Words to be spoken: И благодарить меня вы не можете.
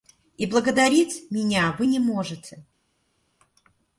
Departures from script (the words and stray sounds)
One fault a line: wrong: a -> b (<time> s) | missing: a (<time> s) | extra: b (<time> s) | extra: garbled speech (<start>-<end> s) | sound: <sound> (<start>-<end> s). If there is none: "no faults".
no faults